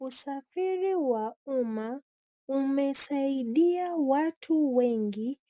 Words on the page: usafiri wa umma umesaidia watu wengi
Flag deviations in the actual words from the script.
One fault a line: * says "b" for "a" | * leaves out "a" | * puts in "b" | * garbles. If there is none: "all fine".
all fine